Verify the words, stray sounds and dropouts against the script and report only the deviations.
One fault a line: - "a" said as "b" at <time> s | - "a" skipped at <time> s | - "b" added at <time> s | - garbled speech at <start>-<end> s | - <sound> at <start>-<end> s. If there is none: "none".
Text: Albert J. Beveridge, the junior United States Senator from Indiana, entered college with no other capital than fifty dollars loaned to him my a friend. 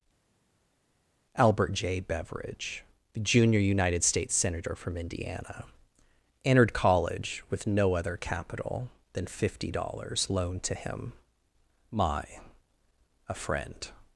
none